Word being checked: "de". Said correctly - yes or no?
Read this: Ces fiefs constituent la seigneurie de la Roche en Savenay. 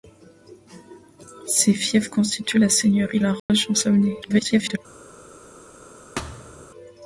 no